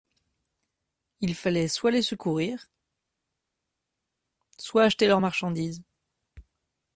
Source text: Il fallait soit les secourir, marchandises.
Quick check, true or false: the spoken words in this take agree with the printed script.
false